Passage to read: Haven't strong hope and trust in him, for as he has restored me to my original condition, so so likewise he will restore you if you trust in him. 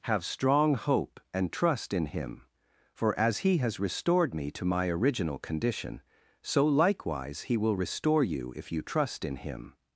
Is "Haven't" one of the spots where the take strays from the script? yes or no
yes